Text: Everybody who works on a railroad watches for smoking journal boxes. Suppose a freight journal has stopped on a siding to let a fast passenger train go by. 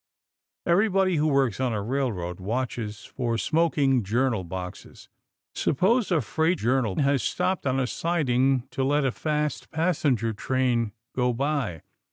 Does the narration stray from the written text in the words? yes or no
no